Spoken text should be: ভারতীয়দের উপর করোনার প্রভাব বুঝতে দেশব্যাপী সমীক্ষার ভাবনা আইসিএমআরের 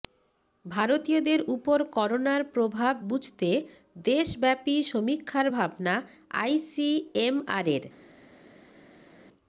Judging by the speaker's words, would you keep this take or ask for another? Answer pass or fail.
pass